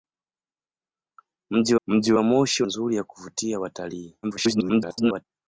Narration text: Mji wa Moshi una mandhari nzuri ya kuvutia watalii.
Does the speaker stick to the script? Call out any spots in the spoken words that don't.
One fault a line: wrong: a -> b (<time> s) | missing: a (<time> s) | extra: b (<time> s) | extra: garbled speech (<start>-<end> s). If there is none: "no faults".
extra: mji (1.9 s)
missing: una mandhari (2.6 s)
extra: garbled speech (4.2-5.3 s)